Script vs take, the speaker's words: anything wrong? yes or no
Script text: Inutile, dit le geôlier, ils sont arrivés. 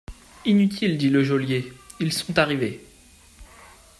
no